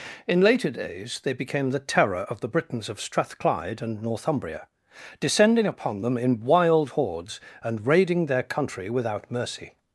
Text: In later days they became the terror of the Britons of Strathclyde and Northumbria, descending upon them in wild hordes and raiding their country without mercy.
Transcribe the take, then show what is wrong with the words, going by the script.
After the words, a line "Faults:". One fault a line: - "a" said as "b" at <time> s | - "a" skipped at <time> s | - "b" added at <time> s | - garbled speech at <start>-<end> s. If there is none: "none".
In later days they became the terror of the Britons of Strathclyde and Northumbria, descending upon them in wild hordes and raiding their country without mercy.
Faults:
none